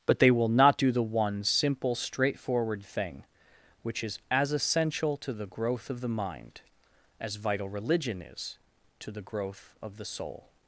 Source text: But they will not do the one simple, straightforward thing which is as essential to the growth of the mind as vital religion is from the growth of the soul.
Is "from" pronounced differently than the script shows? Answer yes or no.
yes